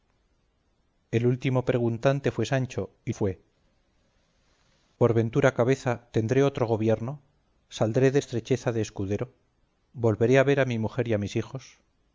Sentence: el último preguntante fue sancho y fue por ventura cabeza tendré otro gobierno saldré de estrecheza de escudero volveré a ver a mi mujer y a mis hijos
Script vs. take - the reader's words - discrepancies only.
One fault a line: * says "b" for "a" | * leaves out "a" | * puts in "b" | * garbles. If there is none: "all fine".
all fine